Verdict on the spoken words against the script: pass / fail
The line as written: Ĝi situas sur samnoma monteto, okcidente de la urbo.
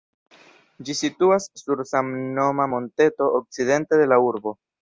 pass